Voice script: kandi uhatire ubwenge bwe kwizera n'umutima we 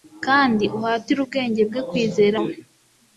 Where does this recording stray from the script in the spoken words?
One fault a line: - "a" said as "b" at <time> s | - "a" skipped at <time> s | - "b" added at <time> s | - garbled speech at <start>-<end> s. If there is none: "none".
- "n'umutima" skipped at 2.4 s